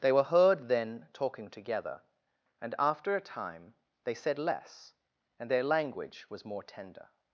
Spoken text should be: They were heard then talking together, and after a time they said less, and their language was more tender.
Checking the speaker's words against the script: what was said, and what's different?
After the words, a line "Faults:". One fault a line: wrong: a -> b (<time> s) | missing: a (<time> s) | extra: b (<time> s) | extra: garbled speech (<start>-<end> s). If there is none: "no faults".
They were heard then talking together, and after a time they said less, and their language was more tender.
Faults:
no faults